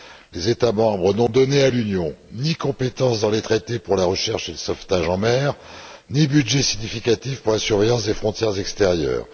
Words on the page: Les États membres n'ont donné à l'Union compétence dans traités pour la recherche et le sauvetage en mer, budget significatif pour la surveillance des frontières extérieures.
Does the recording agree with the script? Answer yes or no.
no